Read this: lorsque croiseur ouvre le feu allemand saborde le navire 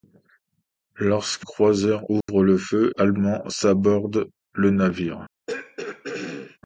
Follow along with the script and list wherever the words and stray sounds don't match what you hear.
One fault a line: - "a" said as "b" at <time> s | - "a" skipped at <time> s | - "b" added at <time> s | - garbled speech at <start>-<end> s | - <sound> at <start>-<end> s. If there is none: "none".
- dropout at 2.2-2.3 s
- throat clearing at 5.5-6.6 s